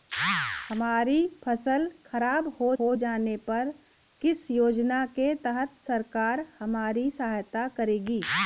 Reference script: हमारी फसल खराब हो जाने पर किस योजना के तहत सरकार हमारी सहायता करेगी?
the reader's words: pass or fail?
fail